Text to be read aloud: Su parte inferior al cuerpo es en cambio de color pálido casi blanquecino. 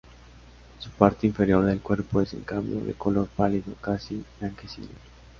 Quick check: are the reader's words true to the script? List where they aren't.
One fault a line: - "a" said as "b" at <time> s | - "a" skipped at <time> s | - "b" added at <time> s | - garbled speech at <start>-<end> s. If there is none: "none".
- "al" said as "del" at 1.6 s